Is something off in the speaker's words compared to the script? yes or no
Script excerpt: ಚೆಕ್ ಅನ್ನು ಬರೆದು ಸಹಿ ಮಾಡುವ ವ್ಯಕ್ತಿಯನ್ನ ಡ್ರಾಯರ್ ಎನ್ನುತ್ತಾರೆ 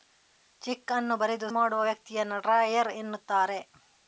yes